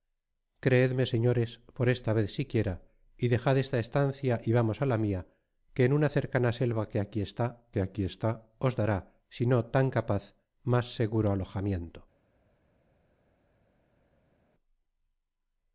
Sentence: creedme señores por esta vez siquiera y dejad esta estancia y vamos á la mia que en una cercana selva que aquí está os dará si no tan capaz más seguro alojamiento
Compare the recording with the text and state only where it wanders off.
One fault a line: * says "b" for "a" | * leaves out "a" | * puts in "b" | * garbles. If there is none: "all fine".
* puts in "que aquí está"